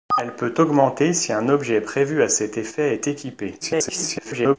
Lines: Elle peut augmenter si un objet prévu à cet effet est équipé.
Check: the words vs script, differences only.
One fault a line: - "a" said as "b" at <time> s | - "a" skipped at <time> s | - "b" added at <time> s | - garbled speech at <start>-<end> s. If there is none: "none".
- garbled speech at 3.6-4.6 s